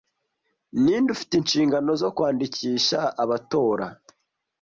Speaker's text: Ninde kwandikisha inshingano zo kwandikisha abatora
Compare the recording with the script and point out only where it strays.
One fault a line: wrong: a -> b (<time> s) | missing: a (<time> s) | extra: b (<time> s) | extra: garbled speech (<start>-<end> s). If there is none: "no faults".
wrong: kwandikisha -> ufite (1.1 s)